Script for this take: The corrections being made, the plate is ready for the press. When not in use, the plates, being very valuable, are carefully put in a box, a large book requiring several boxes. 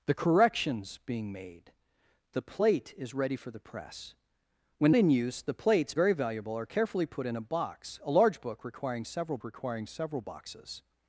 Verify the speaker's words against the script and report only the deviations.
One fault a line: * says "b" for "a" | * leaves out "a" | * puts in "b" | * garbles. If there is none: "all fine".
* leaves out "not"
* leaves out "being"
* puts in "requiring several"